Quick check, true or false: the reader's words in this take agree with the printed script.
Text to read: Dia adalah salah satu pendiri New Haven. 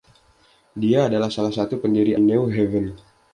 true